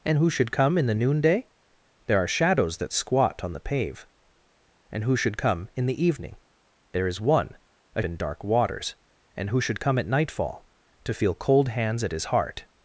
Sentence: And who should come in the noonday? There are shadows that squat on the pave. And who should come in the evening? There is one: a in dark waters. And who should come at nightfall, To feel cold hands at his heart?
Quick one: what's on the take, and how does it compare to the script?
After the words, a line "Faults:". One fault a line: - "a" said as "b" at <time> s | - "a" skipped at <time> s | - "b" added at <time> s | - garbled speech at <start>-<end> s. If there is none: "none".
And who should come in the noonday? There are shadows that squat on the pave. And who should come in the evening? There is one: a in dark waters. And who should come at nightfall, To feel cold hands at his heart?
Faults:
none